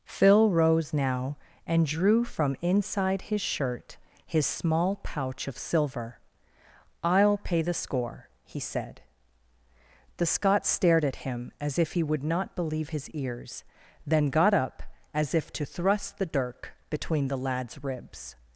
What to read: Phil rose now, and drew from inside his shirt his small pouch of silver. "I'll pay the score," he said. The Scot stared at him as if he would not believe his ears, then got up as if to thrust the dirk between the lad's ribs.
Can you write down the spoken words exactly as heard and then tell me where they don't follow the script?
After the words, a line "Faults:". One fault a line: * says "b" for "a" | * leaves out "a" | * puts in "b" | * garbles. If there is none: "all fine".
Phil rose now, and drew from inside his shirt his small pouch of silver. "I'll pay the score," he said. The Scot stared at him as if he would not believe his ears, then got up as if to thrust the dirk between the lad's ribs.
Faults:
all fine